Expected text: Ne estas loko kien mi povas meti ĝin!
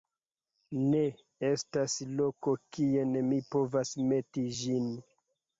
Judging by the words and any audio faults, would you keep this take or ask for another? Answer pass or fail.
pass